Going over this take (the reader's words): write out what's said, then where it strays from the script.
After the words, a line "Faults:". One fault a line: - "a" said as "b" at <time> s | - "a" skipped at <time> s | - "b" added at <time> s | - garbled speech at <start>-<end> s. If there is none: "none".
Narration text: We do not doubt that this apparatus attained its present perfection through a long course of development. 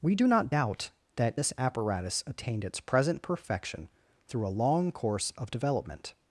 We do not doubt that this apparatus attained its present perfection through a long course of development.
Faults:
none